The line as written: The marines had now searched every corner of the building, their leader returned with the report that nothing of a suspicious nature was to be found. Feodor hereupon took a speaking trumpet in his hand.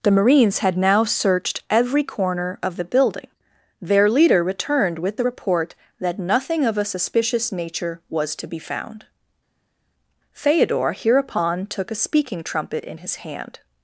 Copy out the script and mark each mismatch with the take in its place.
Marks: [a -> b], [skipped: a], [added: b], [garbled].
The marines had now searched every corner of the building, their leader returned with the report that nothing of a suspicious nature was to be found. Feodor hereupon took a speaking trumpet in his hand.